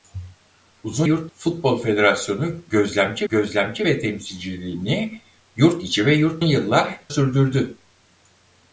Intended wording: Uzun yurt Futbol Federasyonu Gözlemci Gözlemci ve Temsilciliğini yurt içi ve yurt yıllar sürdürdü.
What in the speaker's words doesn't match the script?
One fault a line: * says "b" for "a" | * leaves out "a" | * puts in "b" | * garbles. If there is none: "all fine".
all fine